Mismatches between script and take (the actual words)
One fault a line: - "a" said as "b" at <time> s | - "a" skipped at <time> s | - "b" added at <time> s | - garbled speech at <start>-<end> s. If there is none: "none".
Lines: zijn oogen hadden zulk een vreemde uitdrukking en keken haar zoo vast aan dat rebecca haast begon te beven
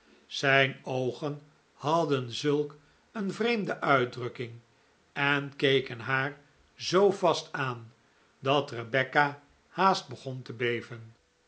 none